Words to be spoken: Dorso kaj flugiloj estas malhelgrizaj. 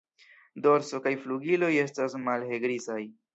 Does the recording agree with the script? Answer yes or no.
yes